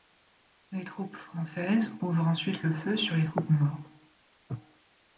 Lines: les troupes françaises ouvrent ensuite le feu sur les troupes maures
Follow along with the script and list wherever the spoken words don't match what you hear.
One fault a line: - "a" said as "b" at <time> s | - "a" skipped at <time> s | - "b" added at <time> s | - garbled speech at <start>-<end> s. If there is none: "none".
none